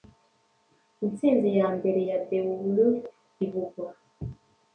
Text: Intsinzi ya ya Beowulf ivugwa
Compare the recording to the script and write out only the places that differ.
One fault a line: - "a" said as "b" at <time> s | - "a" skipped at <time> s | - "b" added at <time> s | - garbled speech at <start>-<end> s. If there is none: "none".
- "mbere" added at 1.8 s